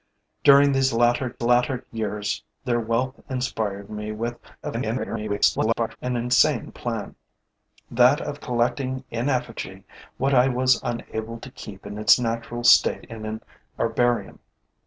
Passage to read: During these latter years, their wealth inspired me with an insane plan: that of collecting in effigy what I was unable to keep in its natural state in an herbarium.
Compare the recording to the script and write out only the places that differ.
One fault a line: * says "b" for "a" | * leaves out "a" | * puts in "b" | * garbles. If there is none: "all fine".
* puts in "latter"
* garbles